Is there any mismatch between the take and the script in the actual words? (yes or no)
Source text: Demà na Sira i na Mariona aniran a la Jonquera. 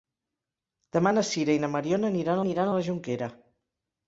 yes